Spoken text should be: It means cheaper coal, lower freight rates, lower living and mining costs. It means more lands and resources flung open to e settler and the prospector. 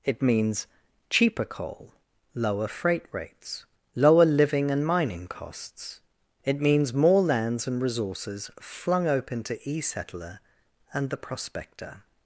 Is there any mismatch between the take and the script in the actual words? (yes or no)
no